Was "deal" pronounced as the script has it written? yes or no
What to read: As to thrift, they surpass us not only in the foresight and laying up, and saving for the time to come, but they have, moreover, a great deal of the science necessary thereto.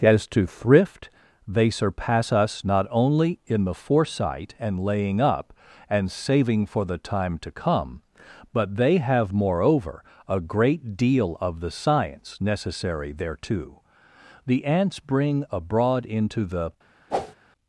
yes